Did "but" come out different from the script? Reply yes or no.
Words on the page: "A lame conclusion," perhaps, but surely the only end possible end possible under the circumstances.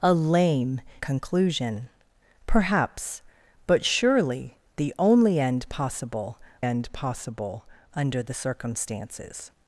no